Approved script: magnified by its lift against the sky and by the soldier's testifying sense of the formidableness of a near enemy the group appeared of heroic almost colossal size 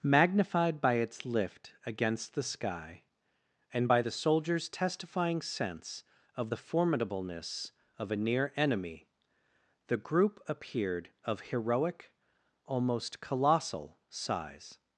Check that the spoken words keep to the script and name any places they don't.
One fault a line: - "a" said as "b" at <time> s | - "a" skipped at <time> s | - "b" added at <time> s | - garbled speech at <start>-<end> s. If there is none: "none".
none